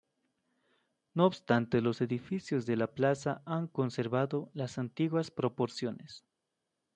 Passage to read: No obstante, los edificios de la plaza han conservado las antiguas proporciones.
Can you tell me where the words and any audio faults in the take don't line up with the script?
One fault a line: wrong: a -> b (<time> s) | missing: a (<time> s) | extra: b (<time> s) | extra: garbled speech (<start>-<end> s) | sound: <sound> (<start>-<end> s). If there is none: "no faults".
no faults